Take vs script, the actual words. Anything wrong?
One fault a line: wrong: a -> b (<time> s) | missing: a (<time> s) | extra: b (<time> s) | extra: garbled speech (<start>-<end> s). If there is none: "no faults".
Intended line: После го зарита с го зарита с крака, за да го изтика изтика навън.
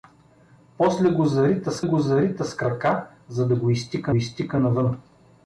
no faults